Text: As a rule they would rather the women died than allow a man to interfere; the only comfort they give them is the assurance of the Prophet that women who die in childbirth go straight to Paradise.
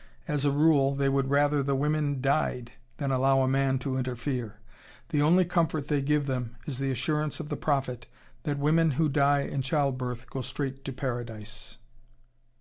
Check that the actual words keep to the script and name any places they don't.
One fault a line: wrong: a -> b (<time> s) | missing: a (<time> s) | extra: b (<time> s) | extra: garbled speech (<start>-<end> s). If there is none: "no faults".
no faults